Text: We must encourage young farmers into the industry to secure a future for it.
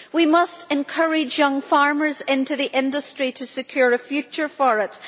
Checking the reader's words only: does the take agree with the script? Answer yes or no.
yes